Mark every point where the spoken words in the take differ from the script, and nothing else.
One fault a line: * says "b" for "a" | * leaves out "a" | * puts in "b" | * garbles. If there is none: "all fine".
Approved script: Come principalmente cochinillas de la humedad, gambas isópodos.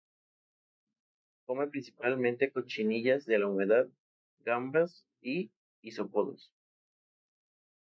* puts in "y"